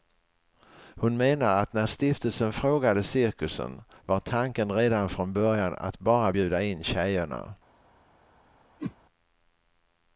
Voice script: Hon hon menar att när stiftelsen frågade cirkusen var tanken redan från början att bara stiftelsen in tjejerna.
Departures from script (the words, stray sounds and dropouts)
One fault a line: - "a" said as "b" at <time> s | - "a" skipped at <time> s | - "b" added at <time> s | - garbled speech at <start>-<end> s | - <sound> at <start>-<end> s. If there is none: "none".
- "hon" skipped at 1.2 s
- "stiftelsen" said as "bjuda" at 6.3 s
- whoosh at 8.8-9.0 s